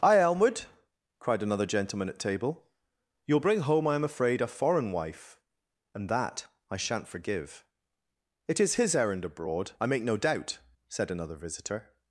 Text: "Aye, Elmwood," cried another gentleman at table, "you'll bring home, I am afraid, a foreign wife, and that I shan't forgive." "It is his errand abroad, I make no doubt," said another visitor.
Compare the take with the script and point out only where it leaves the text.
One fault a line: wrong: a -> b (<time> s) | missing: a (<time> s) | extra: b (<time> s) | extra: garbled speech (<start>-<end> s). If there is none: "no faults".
no faults